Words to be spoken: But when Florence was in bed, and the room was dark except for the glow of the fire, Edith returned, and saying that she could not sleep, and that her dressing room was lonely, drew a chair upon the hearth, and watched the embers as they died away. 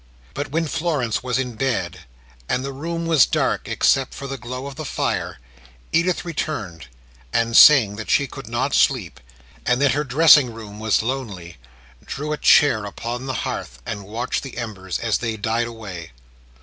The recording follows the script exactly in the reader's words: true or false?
true